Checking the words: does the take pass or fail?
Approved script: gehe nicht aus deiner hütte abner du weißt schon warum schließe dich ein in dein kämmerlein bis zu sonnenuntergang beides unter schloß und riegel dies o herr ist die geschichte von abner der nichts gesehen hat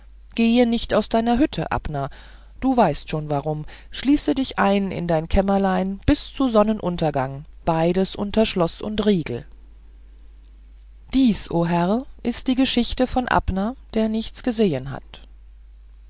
pass